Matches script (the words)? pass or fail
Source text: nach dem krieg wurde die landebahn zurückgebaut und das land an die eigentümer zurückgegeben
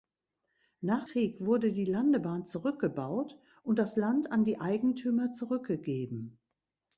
fail